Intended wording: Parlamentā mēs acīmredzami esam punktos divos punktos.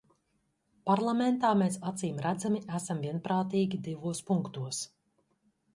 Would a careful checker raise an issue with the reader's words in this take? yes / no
yes